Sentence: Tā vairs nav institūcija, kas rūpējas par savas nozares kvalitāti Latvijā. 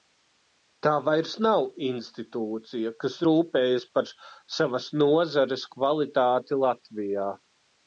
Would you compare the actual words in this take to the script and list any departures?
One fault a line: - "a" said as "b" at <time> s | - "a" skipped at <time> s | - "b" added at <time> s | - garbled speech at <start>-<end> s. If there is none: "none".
none